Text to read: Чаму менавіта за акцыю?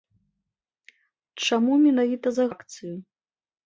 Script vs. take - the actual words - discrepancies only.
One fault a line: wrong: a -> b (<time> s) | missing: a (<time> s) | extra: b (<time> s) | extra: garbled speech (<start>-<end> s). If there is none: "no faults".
no faults